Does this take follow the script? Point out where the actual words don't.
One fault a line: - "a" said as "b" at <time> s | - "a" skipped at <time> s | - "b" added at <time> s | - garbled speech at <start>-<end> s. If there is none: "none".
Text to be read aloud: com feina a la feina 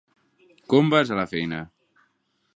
- "feina" said as "vas" at 0.9 s